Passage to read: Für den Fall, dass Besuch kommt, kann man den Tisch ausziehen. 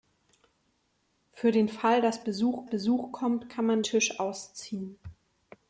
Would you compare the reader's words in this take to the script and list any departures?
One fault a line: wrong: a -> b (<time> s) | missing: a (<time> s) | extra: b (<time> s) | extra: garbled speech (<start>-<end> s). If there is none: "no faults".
extra: Besuch (2.7 s)
missing: den (3.8 s)